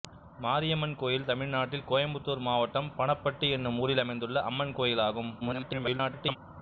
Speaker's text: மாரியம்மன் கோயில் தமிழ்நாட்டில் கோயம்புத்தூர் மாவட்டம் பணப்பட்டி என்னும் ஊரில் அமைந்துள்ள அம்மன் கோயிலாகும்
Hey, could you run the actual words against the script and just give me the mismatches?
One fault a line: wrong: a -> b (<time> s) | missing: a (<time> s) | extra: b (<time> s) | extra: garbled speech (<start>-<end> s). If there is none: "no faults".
extra: garbled speech (5.4-6.4 s)